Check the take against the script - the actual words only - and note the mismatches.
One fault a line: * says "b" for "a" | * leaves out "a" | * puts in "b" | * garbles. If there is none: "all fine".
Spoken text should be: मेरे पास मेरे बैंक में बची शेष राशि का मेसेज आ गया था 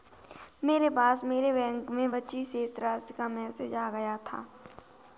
all fine